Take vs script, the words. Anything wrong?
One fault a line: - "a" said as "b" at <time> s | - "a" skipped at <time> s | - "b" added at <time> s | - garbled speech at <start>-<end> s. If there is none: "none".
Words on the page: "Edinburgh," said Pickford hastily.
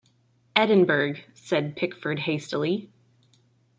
none